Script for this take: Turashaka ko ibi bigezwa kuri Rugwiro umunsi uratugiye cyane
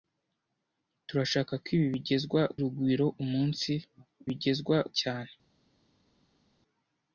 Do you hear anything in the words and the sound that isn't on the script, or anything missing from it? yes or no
yes